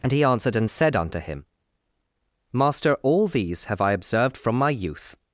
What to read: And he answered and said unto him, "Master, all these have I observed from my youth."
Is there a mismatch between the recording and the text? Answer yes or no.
no